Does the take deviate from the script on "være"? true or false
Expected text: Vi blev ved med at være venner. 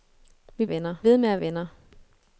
true